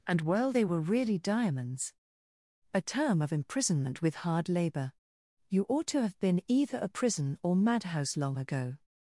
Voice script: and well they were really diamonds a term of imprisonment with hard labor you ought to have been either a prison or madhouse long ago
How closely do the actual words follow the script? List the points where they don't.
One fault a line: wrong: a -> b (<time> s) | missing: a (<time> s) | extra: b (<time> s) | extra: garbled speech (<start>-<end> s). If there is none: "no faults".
no faults